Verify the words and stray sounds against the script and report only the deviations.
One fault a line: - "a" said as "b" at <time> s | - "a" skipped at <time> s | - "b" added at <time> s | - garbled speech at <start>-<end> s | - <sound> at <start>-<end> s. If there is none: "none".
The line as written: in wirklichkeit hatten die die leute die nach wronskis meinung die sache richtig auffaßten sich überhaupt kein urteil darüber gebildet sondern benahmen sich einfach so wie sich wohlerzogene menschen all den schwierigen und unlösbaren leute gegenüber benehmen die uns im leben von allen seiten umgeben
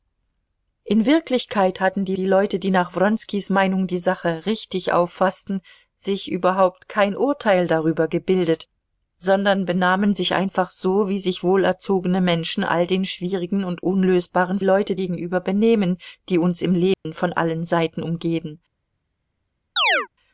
- dropout at 16.9-17.1 s
- chirp at 19.8-20.1 s